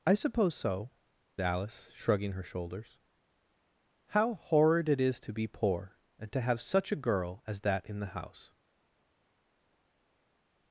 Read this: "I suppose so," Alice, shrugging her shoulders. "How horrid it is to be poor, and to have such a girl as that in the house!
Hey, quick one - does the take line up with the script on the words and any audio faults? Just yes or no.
yes